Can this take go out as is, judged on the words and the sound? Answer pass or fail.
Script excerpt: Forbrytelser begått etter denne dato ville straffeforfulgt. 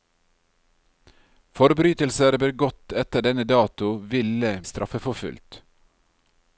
pass